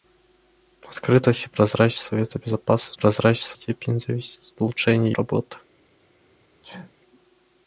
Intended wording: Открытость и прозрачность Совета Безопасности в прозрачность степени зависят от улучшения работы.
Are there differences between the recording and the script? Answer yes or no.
no